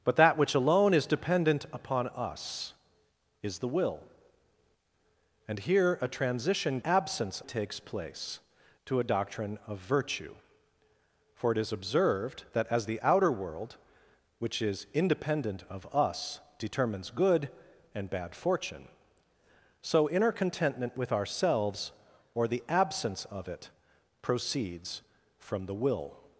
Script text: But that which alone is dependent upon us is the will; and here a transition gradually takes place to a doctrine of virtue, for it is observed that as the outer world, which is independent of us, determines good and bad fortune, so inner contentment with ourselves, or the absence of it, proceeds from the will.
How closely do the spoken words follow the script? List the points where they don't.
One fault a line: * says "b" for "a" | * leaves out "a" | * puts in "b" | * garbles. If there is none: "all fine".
* says "absence" for "gradually"